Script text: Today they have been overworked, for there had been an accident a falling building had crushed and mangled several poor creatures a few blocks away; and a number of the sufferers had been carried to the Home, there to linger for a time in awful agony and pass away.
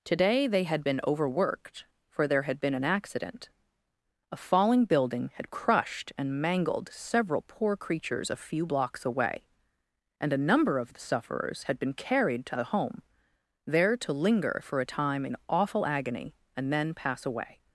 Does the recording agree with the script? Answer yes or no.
no